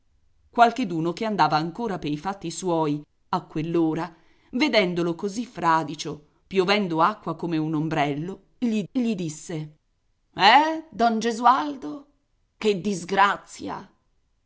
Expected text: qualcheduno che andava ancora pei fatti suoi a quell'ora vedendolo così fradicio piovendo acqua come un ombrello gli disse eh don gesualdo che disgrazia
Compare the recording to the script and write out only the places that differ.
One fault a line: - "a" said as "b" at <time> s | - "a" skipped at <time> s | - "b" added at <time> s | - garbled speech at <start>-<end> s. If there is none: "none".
- "gli" added at 8.9 s